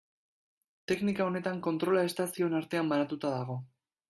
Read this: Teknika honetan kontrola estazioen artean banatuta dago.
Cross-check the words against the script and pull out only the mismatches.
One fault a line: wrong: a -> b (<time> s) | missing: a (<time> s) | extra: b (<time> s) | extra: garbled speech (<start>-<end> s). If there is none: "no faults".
no faults